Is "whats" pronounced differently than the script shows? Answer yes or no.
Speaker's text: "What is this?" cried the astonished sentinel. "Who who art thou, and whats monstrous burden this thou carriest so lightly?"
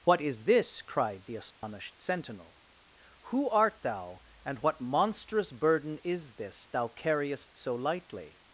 yes